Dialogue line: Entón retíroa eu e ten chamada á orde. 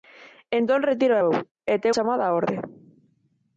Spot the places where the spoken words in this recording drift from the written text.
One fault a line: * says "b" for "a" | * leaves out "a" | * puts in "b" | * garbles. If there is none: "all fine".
all fine